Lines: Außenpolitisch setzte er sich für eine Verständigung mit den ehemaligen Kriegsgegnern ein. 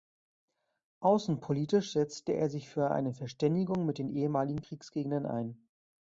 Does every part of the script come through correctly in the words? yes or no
yes